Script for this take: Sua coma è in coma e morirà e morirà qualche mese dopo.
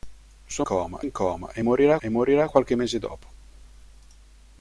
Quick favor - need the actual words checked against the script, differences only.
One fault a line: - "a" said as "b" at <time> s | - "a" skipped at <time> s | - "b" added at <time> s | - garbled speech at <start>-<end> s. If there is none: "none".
none